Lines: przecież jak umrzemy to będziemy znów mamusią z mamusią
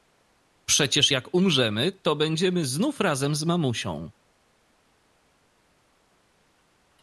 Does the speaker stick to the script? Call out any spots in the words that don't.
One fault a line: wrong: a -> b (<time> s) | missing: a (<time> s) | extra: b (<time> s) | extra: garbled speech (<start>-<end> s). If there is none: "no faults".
wrong: mamusią -> razem (3.0 s)